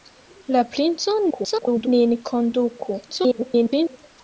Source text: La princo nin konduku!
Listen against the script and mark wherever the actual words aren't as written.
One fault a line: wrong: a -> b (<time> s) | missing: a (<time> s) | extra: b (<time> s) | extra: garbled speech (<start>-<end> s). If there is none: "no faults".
extra: garbled speech (1.3-1.9 s)
extra: garbled speech (3.1-4.0 s)